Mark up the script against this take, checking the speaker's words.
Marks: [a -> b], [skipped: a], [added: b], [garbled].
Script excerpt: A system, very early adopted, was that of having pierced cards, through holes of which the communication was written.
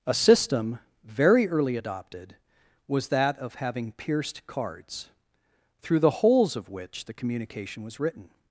A system, very early adopted, was that of having pierced cards, through [added: the] holes of which the communication was written.